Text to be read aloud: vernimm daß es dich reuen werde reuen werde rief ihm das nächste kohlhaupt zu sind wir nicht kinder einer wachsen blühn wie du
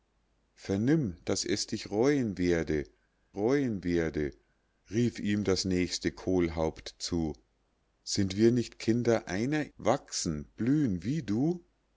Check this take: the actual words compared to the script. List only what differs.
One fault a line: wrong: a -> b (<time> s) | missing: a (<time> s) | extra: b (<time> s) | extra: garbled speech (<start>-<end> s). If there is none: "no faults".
no faults